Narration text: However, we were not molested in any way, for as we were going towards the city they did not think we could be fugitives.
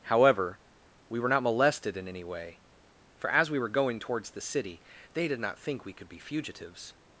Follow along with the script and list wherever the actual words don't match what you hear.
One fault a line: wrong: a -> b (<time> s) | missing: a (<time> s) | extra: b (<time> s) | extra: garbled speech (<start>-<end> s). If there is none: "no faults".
no faults